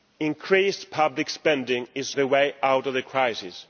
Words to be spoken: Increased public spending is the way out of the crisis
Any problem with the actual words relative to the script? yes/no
no